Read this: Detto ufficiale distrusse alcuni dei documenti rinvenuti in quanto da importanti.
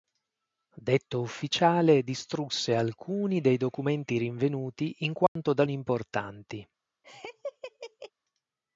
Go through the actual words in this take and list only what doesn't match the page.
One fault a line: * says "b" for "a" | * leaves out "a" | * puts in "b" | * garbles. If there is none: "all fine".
all fine